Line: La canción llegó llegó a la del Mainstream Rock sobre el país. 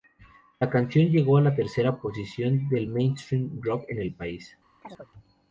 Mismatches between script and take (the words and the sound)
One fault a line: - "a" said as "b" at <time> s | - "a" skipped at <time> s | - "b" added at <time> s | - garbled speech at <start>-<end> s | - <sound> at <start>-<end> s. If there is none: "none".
- "llegó" skipped at 1.4 s
- "tercera posición" added at 1.5 s
- "sobre" said as "en" at 3.9 s
- chirp at 4.8-5.1 s